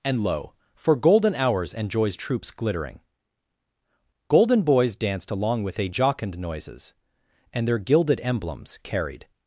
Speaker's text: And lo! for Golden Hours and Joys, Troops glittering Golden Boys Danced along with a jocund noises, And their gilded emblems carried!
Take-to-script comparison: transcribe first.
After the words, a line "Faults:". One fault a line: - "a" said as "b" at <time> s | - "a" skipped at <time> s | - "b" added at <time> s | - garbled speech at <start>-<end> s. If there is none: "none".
And lo! for Golden Hours and Joys, Troops glittering Golden Boys Danced along with a jocund noises, And their gilded emblems carried!
Faults:
none